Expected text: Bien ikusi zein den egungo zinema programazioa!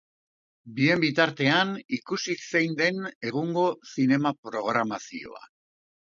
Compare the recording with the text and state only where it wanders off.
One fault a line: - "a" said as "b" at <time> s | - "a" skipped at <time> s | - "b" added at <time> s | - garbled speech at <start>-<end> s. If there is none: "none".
- "bitartean" added at 1.0 s